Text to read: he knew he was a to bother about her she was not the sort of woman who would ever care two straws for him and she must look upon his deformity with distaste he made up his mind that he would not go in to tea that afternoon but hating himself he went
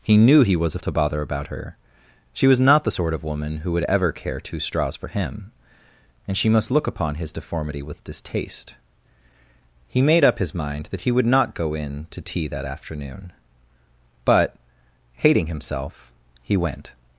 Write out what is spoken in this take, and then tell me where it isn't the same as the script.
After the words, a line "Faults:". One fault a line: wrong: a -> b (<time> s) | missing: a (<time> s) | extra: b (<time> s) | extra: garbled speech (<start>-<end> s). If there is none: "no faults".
he knew he was a to bother about her she was not the sort of woman who would ever care two straws for him and she must look upon his deformity with distaste he made up his mind that he would not go in to tea that afternoon but hating himself he went
Faults:
no faults